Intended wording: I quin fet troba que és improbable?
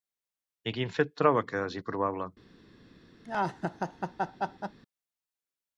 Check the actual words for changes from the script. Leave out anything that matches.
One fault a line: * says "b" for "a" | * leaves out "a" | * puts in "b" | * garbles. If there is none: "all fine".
all fine